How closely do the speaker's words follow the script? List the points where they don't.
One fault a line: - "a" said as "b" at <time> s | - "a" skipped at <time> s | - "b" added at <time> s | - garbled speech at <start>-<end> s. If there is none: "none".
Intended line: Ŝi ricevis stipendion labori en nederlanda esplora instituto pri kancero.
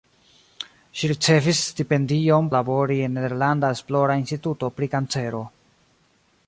none